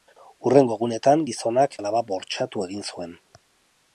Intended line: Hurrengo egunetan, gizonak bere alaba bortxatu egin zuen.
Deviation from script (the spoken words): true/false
true